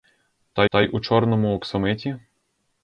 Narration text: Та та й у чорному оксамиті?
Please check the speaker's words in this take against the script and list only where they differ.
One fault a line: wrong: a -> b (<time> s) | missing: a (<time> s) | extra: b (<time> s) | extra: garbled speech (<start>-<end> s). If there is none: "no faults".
no faults